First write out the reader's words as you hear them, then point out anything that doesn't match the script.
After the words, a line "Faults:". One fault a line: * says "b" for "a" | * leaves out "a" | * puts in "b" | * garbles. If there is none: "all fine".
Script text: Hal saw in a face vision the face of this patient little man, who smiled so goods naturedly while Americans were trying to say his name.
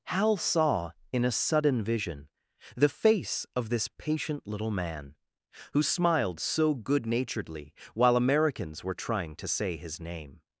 Hal saw in a sudden vision the face of this patient little man, who smiled so good naturedly while Americans were trying to say his name.
Faults:
* says "sudden" for "face"
* says "good" for "goods"